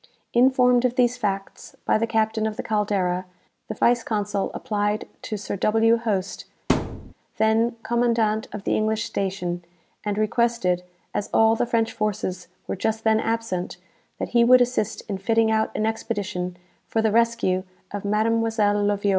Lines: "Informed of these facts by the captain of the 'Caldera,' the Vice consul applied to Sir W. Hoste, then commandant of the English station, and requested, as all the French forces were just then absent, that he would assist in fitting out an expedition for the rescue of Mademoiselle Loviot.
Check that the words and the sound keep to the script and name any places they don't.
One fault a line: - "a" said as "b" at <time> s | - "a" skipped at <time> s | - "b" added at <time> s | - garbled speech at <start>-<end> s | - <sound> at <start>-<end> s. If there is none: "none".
- thud at 6.7-7.1 s